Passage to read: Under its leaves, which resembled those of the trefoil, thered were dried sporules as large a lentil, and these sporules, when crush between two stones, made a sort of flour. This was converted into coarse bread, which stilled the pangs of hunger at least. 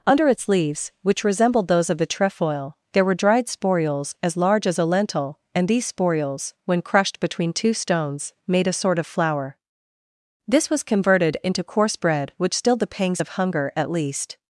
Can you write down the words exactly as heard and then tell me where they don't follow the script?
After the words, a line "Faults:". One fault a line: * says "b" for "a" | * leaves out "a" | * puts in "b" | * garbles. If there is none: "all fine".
Under its leaves, which resembled those of the trefoil, there were dried sporules as large as a lentil, and these sporules, when crushed between two stones, made a sort of flour. This was converted into coarse bread, which stilled the pangs of hunger at least.
Faults:
* says "there" for "thered"
* puts in "as"
* says "crushed" for "crush"